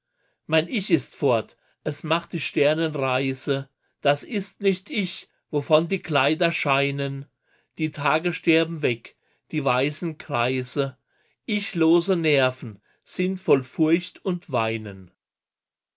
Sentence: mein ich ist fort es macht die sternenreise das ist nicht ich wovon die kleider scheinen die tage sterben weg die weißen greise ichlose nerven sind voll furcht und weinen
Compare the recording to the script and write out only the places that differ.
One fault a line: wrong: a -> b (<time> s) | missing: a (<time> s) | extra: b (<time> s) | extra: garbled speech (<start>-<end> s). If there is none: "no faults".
no faults